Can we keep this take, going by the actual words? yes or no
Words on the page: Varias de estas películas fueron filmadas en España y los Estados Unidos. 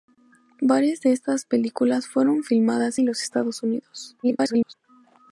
no